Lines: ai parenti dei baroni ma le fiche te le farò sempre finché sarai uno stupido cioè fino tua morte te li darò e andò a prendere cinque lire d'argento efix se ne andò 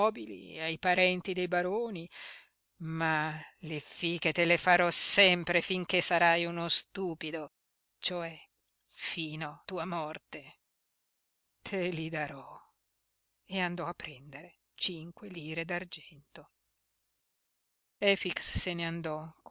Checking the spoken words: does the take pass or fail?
pass